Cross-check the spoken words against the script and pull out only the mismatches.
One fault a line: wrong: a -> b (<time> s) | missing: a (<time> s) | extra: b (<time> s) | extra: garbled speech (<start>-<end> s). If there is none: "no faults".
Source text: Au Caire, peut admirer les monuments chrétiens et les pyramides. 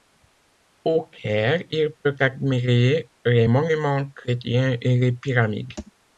extra: il (1.7 s)